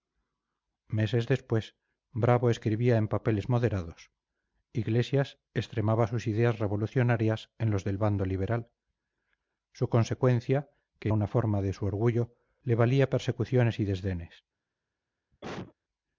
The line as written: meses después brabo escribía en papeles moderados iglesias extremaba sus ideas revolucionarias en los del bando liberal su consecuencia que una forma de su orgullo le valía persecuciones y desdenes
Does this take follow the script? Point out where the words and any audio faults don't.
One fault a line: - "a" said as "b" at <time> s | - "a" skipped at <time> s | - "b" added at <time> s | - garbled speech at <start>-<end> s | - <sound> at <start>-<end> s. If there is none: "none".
- cough at 15.3-15.8 s